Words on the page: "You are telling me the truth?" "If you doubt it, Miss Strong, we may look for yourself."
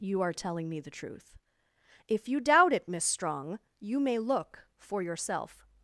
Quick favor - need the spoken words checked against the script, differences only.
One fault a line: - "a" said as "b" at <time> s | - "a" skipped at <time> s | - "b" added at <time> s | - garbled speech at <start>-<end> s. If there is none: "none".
- "we" said as "you" at 3.8 s